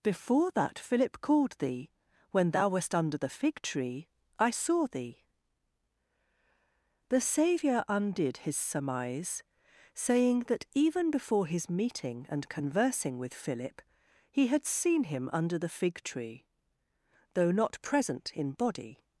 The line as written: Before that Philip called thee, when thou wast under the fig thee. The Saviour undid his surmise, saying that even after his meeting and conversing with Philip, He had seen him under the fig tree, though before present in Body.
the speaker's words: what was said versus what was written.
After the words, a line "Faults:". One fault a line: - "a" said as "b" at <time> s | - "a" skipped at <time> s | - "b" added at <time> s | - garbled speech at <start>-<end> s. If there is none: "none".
Before that Philip called thee, when thou wast under the fig tree, I saw thee. The Saviour undid his surmise, saying that even before his meeting and conversing with Philip, He had seen him under the fig tree, though not present in Body.
Faults:
- "tree I saw" added at 3.6 s
- "after" said as "before" at 11.1 s
- "before" said as "not" at 17.5 s